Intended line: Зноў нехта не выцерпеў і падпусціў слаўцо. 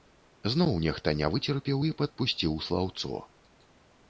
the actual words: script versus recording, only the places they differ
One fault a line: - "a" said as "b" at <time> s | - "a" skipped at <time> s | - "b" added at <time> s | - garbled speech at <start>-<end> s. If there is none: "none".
none